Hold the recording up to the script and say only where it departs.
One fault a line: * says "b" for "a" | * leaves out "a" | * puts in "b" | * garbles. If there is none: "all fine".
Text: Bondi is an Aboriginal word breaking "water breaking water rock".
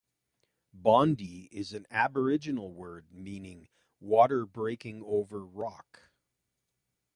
* says "meaning" for "breaking"
* says "over" for "water"